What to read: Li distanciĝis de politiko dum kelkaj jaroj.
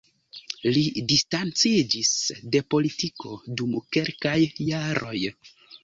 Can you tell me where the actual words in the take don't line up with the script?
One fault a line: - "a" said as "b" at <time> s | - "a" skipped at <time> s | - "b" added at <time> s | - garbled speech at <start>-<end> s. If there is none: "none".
none